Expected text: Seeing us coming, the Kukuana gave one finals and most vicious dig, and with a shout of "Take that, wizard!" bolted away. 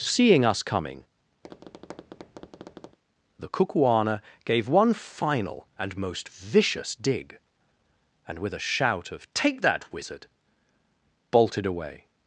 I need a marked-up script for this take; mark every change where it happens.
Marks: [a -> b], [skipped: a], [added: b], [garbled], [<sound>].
Seeing us coming, [tap] the Kukuana gave one [finals -> final] and most vicious dig, and with a shout of "Take that, wizard!" bolted away.